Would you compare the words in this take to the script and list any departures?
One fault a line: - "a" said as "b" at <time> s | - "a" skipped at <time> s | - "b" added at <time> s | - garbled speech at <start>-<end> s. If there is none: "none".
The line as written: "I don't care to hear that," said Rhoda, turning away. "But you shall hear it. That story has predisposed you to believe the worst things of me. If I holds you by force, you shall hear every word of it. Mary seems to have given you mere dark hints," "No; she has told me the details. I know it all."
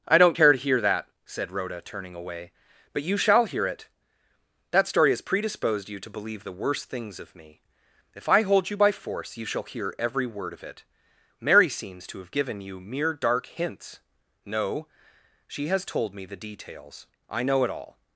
- "holds" said as "hold" at 8.4 s